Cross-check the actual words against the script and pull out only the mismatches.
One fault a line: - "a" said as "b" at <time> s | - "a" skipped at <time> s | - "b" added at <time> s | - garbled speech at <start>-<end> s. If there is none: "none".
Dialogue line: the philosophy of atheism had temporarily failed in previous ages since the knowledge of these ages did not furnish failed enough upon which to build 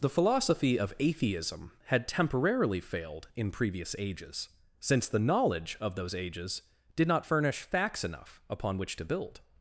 - "these" said as "those" at 6.0 s
- "failed" said as "facts" at 7.6 s